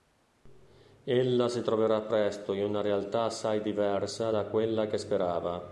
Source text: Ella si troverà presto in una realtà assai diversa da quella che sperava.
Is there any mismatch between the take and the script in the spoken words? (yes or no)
no